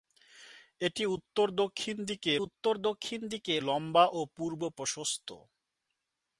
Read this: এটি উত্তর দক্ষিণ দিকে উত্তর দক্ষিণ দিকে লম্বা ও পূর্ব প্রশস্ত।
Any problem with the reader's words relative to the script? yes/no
no